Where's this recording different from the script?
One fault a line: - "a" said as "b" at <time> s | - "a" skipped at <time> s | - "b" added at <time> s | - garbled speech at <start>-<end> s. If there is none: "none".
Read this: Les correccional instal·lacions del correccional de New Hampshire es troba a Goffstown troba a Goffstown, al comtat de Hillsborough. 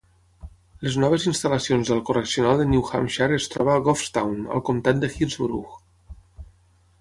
- "correccional" said as "noves" at 1.0 s
- "troba a Goffstown" skipped at 4.4 s